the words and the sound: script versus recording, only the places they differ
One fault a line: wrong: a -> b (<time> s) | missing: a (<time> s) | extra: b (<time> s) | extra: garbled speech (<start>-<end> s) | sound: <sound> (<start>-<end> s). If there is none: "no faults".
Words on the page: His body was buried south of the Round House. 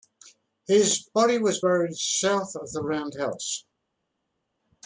no faults